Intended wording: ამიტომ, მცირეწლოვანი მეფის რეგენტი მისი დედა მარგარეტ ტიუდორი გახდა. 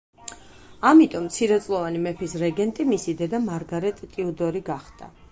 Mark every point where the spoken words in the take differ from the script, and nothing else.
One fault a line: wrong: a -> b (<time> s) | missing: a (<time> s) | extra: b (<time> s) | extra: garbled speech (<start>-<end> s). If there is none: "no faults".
no faults